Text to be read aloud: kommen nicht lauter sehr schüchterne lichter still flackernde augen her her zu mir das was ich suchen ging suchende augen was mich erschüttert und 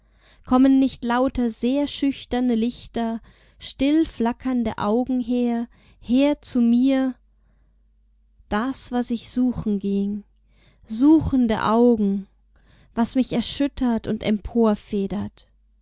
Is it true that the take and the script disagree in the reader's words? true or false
false